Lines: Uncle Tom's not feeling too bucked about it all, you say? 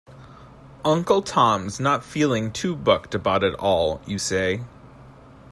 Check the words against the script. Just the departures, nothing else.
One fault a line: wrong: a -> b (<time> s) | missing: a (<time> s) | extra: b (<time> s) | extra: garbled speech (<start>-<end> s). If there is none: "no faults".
no faults